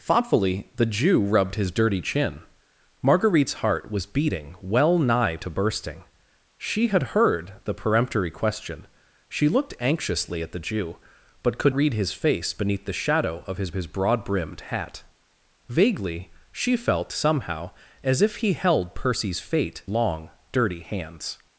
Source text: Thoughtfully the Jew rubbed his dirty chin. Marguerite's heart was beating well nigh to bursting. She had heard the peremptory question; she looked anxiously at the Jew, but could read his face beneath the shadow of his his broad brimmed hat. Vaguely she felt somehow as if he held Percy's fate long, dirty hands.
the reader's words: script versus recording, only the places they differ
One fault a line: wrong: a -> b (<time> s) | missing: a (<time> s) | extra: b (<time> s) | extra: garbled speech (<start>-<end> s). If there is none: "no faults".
no faults